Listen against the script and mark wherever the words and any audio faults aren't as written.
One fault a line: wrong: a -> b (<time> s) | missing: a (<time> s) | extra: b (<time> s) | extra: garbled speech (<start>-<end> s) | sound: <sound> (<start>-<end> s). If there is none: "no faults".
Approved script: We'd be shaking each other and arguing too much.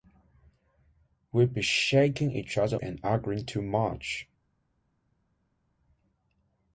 no faults